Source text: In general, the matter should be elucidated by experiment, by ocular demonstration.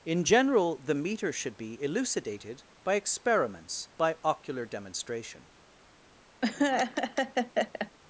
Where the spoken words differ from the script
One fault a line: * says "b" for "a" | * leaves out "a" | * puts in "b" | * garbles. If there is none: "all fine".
* says "meter" for "matter"
* says "experiments" for "experiment"